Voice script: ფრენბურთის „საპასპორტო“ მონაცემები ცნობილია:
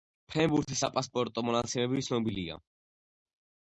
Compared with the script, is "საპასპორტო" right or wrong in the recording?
right